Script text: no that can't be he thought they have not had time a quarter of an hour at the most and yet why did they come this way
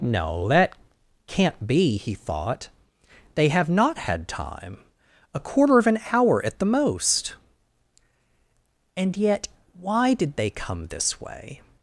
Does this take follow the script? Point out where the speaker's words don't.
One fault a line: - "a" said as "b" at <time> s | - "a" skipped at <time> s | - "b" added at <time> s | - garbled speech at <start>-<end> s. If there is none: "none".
none